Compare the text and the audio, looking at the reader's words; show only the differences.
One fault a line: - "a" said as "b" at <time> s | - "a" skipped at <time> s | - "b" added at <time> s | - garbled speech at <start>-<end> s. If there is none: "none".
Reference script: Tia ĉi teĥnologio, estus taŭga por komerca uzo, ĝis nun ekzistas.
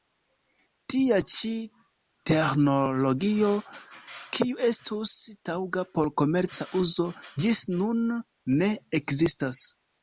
- "kiu" added at 4.4 s
- "ne" added at 8.6 s